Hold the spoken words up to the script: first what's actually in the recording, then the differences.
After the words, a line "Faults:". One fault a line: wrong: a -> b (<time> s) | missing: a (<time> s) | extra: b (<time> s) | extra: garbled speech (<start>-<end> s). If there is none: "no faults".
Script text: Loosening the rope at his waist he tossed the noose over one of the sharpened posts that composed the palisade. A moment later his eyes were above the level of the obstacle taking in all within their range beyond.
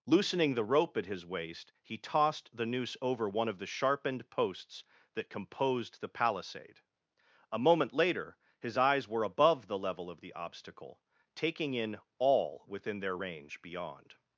Loosening the rope at his waist he tossed the noose over one of the sharpened posts that composed the palisade. A moment later his eyes were above the level of the obstacle taking in all within their range beyond.
Faults:
no faults